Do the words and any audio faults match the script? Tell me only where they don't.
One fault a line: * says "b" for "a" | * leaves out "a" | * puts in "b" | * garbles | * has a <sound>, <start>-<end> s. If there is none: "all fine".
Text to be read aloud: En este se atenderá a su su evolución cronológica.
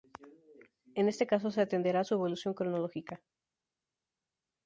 * puts in "caso"
* leaves out "su"